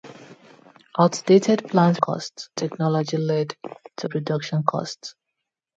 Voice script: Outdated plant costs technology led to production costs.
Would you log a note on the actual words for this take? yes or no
no